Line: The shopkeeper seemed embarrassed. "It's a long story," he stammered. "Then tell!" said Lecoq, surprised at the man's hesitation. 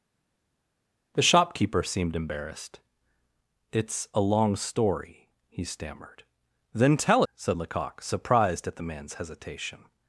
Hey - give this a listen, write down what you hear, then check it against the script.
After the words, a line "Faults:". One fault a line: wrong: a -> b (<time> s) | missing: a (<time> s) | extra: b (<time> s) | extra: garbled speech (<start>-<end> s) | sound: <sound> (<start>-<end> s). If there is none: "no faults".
The shopkeeper seemed embarrassed. "It's a long story," he stammered. "Then tell!" said Lecoq, surprised at the man's hesitation.
Faults:
no faults